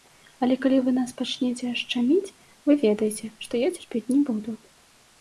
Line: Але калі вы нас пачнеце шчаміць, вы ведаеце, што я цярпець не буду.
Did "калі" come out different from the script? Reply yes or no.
no